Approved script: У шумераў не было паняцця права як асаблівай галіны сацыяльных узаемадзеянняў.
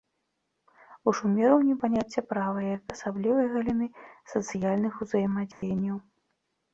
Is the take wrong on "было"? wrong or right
wrong